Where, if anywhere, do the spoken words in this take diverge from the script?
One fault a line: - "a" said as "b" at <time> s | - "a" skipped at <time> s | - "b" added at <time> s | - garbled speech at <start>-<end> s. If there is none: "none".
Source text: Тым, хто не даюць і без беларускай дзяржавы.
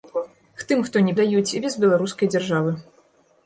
none